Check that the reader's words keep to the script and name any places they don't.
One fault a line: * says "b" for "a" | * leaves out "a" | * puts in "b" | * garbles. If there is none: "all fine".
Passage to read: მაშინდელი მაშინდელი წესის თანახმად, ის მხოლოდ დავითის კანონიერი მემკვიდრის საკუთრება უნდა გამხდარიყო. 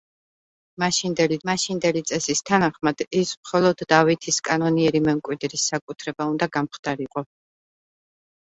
all fine